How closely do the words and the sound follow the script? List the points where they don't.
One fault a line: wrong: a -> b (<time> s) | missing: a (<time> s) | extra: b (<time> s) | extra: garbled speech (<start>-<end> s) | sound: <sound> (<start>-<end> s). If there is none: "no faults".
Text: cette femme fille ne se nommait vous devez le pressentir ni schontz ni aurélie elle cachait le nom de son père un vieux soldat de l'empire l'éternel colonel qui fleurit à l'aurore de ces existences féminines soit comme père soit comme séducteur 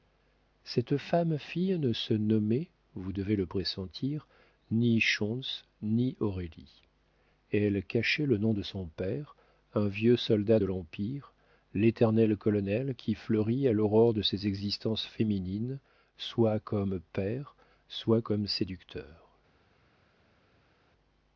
no faults